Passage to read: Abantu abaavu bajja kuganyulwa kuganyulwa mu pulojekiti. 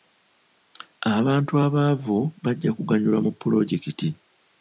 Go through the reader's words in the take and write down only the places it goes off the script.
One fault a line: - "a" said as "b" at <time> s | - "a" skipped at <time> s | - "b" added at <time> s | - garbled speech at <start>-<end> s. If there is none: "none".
- "kuganyulwa" skipped at 3.2 s